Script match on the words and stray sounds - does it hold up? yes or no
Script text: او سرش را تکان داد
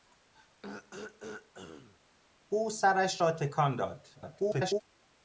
no